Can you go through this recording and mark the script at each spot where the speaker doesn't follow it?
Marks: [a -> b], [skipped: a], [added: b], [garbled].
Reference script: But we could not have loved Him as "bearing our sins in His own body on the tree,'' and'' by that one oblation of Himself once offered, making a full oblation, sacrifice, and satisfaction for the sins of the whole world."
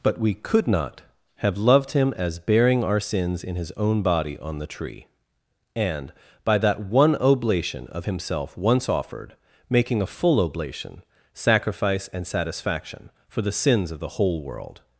But we could not have loved Him as "bearing our sins in His own body on the tree,'' and'' by that one oblation of Himself once offered, making a full oblation, sacrifice, and satisfaction for the sins of the whole world."